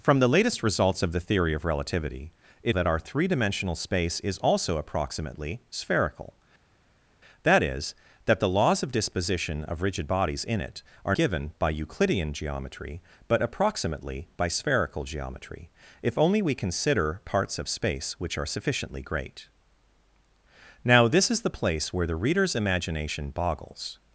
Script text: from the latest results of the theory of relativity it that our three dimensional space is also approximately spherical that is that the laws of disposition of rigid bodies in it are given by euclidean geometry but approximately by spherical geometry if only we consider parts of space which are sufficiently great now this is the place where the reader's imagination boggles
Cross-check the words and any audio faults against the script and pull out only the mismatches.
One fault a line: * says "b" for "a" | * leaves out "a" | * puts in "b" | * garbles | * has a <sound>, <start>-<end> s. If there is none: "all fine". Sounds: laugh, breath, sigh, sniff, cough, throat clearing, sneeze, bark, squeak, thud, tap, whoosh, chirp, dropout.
all fine